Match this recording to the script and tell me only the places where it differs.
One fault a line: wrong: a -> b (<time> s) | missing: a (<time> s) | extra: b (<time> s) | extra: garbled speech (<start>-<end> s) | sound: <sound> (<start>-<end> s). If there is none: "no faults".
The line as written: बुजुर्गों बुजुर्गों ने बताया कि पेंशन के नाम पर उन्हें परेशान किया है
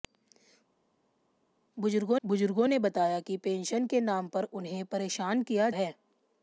no faults